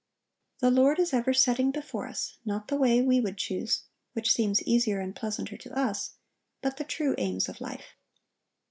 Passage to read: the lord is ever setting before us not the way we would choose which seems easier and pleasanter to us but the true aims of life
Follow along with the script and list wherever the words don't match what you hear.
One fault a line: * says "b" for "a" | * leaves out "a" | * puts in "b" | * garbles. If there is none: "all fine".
all fine